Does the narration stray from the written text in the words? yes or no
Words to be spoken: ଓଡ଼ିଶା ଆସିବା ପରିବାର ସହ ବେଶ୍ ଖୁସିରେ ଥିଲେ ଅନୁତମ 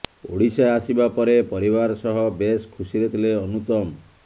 yes